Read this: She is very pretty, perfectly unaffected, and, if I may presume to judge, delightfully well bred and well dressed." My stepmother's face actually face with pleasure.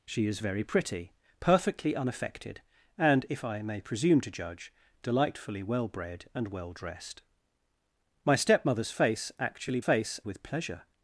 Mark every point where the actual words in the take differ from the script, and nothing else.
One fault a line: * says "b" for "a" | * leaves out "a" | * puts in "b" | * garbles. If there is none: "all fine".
all fine